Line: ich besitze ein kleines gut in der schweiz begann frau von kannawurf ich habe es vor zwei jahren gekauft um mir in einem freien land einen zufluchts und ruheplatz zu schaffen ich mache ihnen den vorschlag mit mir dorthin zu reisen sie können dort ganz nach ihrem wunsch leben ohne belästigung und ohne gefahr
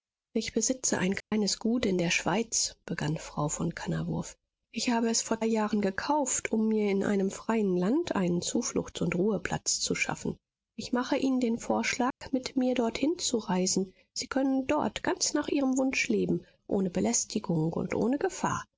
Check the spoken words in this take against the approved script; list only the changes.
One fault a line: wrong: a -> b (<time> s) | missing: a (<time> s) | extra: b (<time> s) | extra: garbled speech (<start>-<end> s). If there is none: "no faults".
missing: zwei (5.4 s)